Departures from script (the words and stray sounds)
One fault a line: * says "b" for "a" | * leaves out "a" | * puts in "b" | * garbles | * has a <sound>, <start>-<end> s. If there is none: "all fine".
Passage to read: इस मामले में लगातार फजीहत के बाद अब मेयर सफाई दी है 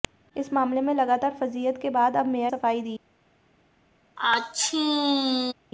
* has a sneeze, 4.2-5.5 s